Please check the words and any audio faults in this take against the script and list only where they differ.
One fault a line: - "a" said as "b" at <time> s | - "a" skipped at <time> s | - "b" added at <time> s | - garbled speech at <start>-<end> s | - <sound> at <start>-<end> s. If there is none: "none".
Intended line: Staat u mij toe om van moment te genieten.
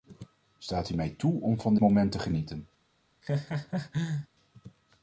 - laugh at 3.2-4.3 s